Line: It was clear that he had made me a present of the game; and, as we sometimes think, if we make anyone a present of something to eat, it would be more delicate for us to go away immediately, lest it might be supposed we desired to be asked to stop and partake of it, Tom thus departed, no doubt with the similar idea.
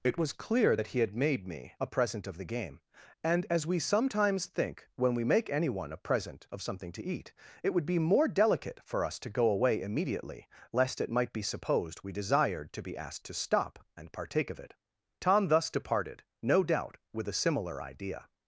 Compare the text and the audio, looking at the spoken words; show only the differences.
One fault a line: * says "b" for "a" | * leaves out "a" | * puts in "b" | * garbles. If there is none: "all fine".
* says "when" for "if"
* says "a" for "the"